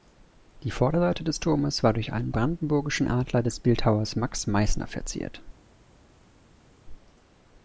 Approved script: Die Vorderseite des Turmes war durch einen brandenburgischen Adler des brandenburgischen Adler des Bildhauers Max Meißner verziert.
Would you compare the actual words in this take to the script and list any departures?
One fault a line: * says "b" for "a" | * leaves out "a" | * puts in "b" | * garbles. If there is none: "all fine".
* leaves out "brandenburgischen Adler des"